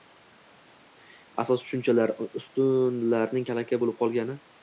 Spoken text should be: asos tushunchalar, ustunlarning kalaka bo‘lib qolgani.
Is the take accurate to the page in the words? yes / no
yes